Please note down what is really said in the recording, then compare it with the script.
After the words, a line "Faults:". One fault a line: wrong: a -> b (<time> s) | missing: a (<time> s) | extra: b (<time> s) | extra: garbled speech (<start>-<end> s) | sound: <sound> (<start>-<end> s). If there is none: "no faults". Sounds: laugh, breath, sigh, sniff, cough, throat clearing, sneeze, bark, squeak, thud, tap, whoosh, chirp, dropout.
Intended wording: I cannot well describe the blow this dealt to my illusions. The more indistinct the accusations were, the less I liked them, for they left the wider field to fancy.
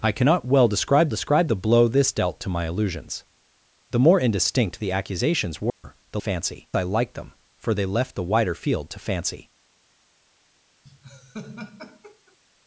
I cannot well describe describe the blow this dealt to my illusions. The more indistinct the accusations were, the fancy I liked them, for they left the wider field to fancy.
Faults:
extra: describe (1.1 s)
sound: dropout (5.7-5.8 s)
wrong: less -> fancy (6.2 s)
sound: laugh (10.8-12.4 s)